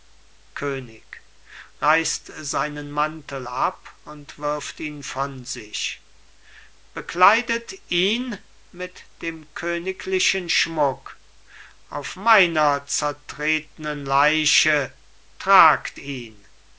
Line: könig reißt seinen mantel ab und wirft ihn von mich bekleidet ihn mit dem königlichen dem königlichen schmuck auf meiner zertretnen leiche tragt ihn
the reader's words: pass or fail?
fail